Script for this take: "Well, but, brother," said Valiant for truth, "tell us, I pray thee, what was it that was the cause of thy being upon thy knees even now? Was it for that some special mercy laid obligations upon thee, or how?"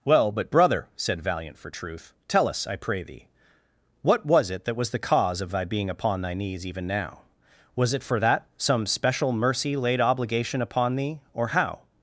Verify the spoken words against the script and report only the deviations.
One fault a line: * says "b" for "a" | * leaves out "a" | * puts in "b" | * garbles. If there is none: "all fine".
* says "obligation" for "obligations"